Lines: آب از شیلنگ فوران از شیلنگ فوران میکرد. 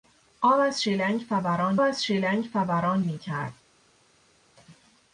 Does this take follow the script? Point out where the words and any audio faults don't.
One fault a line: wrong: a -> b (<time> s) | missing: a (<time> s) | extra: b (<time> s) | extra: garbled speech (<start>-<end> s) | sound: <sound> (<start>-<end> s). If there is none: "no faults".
no faults